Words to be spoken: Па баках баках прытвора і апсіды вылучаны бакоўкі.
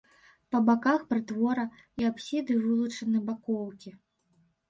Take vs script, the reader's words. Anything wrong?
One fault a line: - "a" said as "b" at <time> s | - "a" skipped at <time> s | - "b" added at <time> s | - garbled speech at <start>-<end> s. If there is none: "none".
- "баках" skipped at 1.0 s